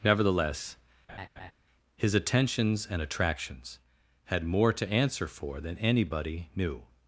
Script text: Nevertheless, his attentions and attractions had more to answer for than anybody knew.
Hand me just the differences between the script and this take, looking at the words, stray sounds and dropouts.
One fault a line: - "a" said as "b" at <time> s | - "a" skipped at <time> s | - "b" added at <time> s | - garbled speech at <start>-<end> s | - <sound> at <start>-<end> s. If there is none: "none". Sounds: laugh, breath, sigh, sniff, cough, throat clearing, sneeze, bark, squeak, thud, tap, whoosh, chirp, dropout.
- laugh at 1.1-1.5 s